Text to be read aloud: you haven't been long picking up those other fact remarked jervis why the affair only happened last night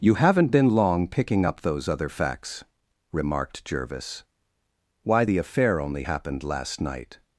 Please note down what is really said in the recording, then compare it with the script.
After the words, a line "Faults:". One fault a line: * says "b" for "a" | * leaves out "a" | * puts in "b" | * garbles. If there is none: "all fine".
you haven't been long picking up those other facts remarked jervis why the affair only happened last night
Faults:
* says "facts" for "fact"